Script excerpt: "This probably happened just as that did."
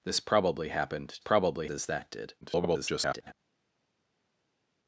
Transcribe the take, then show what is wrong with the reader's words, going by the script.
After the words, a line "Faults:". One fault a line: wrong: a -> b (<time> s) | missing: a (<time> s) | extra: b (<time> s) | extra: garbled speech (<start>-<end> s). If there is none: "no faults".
"This probably happened probably as that did." [garbled]
Faults:
wrong: just -> probably (1.2 s)
extra: garbled speech (2.4-3.3 s)